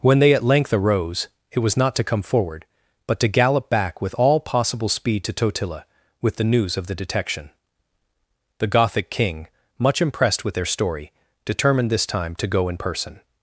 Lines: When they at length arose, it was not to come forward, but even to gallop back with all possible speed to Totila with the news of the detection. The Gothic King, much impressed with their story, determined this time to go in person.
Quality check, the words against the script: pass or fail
fail